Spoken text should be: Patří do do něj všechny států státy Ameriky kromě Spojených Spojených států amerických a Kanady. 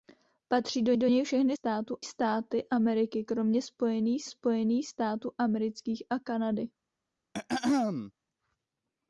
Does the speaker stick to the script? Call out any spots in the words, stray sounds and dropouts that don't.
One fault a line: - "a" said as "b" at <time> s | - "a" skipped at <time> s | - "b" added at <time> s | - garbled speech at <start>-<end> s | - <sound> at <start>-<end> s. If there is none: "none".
- throat clearing at 7.3-8.1 s